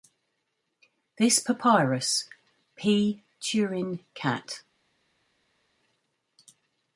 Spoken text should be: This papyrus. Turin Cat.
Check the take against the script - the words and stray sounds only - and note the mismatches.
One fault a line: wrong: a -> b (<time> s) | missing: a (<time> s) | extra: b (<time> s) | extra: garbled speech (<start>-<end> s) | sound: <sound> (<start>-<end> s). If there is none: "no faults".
extra: P (2.8 s)